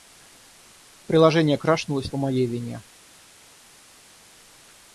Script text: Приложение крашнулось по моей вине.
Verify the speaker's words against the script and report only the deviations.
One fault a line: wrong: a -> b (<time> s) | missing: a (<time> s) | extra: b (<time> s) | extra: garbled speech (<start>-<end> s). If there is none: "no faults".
no faults